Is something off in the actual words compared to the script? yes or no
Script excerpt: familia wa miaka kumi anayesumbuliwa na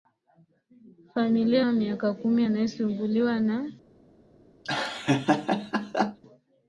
no